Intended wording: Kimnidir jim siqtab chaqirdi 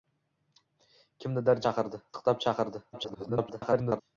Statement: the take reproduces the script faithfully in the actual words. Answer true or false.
false